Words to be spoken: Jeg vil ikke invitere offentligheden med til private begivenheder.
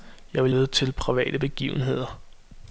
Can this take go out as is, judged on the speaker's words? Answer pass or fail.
fail